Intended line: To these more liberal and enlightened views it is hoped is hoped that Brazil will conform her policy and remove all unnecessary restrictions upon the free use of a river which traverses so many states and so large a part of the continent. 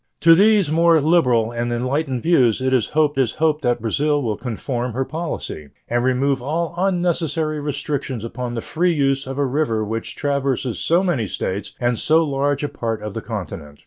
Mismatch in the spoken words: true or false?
false